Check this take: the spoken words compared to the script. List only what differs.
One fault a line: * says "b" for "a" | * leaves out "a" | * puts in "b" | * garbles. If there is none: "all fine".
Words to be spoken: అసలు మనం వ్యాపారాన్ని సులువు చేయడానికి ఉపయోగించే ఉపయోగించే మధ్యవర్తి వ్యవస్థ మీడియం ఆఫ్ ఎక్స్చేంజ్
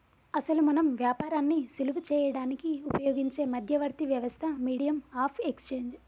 * leaves out "ఉపయోగించే"